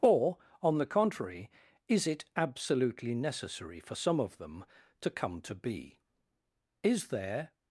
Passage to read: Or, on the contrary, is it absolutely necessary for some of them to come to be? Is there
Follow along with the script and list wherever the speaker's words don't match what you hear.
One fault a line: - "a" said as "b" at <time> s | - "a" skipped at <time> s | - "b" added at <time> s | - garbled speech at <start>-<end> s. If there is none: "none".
none